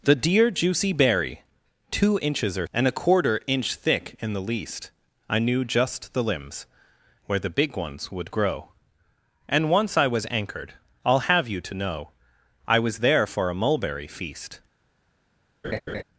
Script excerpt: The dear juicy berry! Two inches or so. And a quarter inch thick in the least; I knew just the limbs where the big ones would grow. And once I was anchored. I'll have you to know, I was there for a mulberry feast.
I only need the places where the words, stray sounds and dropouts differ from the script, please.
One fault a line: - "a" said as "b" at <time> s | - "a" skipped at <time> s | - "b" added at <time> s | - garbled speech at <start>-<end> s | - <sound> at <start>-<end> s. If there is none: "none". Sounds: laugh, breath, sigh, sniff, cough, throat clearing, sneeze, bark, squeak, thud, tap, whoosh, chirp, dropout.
- "so" skipped at 2.6 s
- laugh at 15.6-16.0 s